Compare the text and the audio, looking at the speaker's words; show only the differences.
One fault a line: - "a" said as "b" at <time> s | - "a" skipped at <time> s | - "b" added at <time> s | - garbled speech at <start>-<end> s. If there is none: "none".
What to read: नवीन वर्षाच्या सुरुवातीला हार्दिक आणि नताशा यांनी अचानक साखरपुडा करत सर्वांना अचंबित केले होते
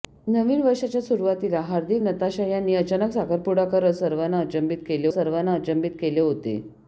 - "आणि" skipped at 2.0 s
- "सर्वांना अचंबित केले" added at 5.1 s